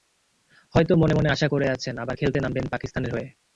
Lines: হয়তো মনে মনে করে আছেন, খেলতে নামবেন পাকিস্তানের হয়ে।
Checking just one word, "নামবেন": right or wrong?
right